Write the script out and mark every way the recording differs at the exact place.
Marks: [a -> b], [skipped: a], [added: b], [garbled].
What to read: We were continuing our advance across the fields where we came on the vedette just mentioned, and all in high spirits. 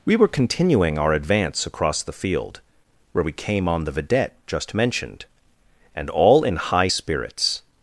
We were continuing our advance across the [fields -> field] where we came on the vedette just mentioned, and all in high spirits.